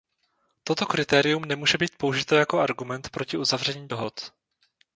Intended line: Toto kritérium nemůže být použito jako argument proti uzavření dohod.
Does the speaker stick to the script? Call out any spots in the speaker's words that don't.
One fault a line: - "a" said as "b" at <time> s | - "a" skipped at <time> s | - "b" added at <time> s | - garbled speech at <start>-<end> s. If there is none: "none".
none